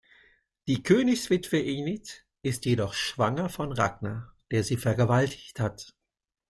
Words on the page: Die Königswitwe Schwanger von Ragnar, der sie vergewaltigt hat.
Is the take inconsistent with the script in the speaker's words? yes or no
yes